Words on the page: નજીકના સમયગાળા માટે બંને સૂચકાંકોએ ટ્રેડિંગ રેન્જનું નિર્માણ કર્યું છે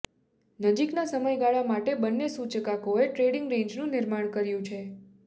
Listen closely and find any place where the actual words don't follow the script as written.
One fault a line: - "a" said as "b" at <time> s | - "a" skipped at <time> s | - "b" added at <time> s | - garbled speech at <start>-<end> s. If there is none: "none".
none